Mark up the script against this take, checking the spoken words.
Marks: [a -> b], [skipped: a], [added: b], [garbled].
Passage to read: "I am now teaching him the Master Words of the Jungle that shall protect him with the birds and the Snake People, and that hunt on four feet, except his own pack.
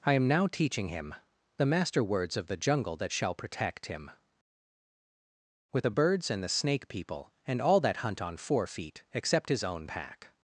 "I am now teaching him the Master Words of the Jungle that shall protect him with the birds and the Snake People, and [added: all] that hunt on four feet, except his own pack.